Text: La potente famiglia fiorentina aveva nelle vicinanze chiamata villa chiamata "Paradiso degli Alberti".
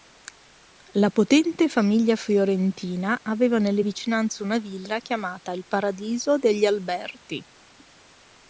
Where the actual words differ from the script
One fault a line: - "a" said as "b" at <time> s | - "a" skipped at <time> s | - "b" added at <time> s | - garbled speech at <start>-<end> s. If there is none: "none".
- "chiamata" said as "una" at 4.4 s
- "il" added at 5.5 s